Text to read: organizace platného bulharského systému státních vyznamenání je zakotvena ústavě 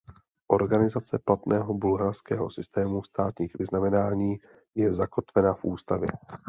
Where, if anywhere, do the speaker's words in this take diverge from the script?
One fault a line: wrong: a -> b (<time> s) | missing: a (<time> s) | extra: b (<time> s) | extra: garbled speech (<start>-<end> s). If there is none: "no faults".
extra: v (5.5 s)